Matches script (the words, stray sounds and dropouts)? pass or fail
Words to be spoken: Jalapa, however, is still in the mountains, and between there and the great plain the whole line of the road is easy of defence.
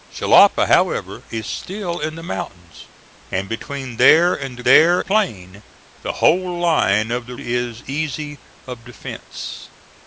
fail